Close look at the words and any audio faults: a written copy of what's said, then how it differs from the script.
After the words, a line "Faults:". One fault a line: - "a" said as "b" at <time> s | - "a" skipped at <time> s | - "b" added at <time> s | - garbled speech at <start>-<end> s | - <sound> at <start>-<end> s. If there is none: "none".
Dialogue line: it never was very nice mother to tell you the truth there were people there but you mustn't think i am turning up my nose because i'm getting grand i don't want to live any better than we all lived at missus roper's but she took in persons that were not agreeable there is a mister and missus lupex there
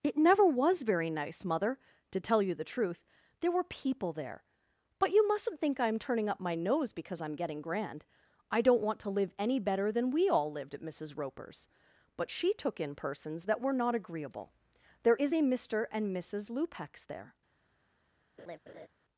it never was very nice mother to tell you the truth there were people there but you mustn't think i am turning up my nose because i'm getting grand i don't want to live any better than we all lived at missus roper's but she took in persons that were not agreeable there is a mister and missus lupex there
Faults:
- laugh at 18.4-18.9 s